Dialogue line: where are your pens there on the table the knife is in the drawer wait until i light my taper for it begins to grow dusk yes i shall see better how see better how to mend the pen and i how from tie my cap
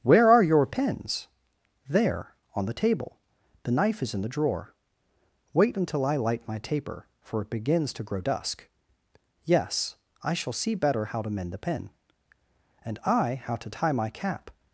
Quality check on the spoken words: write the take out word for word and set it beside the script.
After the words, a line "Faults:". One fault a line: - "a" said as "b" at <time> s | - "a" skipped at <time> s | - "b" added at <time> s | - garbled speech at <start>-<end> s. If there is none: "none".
where are your pens there on the table the knife is in the drawer wait until i light my taper for it begins to grow dusk yes i shall see better how to mend the pen and i how to tie my cap
Faults:
- "see better how" skipped at 11.2 s
- "from" said as "to" at 13.6 s